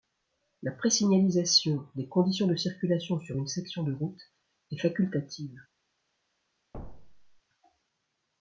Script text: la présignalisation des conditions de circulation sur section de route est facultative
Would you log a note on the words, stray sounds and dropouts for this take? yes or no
yes